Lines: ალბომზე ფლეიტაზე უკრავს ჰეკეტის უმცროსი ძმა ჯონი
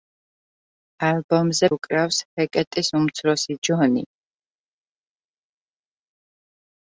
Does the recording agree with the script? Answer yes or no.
no